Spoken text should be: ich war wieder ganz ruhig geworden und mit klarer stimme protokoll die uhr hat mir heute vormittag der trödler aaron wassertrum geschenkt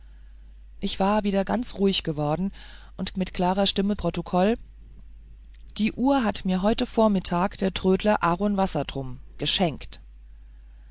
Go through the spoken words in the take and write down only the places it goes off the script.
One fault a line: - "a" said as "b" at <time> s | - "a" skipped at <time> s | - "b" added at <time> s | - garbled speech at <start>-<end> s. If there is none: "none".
none